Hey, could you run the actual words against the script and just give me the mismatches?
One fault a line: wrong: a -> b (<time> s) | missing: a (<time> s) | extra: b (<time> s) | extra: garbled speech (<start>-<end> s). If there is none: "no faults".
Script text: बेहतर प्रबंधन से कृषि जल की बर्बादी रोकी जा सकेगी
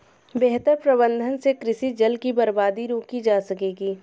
no faults